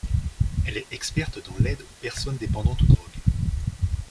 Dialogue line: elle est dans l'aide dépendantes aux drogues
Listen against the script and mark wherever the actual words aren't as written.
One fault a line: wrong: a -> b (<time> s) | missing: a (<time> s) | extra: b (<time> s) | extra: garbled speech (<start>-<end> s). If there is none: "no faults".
extra: experte (0.9 s)
extra: aux personnes (1.8 s)